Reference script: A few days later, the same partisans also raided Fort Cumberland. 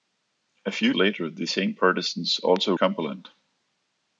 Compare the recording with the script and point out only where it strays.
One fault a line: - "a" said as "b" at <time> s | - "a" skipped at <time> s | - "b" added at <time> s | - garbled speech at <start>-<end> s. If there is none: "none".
- "days" skipped at 0.9 s
- "raided Fort" skipped at 2.7 s